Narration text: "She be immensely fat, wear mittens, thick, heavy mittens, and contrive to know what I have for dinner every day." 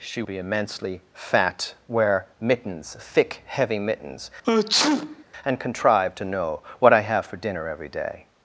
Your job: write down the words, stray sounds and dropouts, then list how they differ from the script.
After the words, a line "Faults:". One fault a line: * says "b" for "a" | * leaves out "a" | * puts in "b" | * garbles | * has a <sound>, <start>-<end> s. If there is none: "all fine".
"She be immensely fat, wear mittens, thick, heavy mittens, and contrive to know what I have for dinner every day."
Faults:
* has a sneeze, 4.4-5.2 s